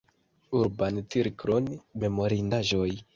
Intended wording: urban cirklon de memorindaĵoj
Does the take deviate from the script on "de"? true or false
true